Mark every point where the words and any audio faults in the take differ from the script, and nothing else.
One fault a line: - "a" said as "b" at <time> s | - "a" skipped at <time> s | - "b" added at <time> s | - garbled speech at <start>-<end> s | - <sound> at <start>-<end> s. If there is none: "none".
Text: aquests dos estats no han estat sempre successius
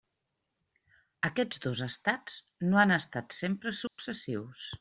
- dropout at 3.9-4.0 s